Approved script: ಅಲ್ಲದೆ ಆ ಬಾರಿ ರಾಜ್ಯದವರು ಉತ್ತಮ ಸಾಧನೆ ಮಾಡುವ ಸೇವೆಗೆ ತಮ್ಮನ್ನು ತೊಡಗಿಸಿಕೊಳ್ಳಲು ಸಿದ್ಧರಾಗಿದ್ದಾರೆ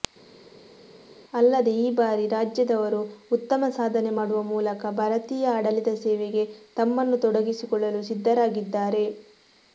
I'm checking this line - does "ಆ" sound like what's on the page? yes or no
no